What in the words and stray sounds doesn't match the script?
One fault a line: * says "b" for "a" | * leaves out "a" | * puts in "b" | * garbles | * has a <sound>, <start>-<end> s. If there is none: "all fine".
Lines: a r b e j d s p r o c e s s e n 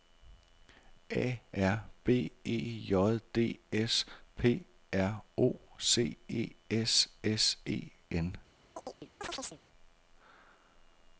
* has a chirp, 8.8-9.6 s